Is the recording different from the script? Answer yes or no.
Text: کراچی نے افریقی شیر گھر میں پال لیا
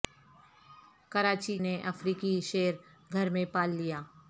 no